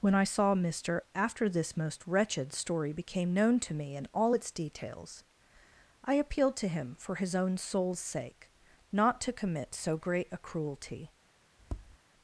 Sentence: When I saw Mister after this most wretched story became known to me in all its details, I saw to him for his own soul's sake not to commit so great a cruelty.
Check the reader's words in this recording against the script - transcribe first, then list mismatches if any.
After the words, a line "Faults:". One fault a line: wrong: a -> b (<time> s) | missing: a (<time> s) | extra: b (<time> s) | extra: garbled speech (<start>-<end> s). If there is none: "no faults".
When I saw Mister after this most wretched story became known to me in all its details, I appealed to him for his own soul's sake not to commit so great a cruelty.
Faults:
wrong: saw -> appealed (6.1 s)